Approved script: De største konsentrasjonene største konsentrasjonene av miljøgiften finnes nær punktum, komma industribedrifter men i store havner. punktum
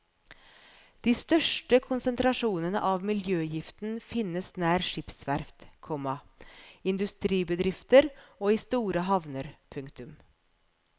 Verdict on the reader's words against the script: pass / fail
fail